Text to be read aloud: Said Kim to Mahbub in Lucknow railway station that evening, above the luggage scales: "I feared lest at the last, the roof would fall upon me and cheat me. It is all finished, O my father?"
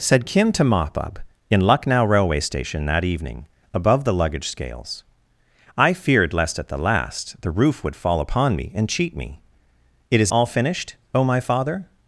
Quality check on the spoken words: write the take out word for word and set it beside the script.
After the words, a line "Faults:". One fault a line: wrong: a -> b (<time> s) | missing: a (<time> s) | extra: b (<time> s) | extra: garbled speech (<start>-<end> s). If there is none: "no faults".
Said Kim to Mahbub in Lucknow railway station that evening, above the luggage scales: "I feared lest at the last, the roof would fall upon me and cheat me. It is all finished, O my father?"
Faults:
no faults